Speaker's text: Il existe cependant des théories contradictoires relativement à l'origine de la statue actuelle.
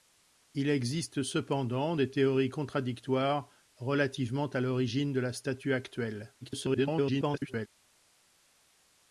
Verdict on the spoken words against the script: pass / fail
fail